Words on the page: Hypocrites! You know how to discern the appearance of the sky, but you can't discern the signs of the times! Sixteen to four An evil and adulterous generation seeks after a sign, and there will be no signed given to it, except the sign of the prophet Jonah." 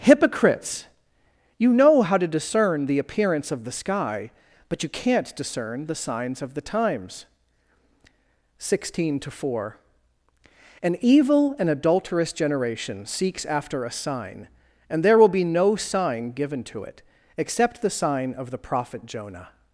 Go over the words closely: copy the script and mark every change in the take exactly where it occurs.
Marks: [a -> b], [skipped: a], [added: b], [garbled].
Hypocrites! You know how to discern the appearance of the sky, but you can't discern the signs of the times! Sixteen to four An evil and adulterous generation seeks after a sign, and there will be no [signed -> sign] given to it, except the sign of the prophet Jonah."